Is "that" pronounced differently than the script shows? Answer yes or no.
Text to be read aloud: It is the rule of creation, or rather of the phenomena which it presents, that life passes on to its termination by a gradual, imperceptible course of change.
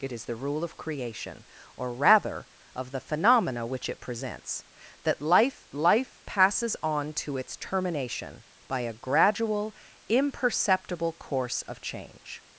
no